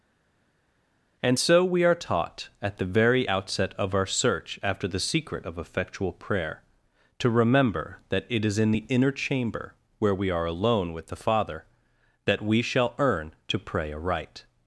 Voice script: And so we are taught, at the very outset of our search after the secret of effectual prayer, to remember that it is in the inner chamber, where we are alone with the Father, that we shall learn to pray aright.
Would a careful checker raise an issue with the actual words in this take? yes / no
yes